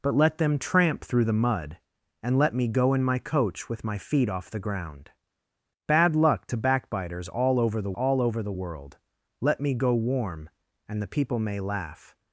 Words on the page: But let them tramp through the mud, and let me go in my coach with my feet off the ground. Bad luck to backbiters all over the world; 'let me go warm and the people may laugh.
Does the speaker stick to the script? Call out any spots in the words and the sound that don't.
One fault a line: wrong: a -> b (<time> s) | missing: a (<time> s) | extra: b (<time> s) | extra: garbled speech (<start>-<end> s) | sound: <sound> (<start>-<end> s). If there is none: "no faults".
extra: all over the (7.9 s)